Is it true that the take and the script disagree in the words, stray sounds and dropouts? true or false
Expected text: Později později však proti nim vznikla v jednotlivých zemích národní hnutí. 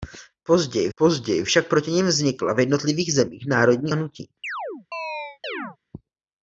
true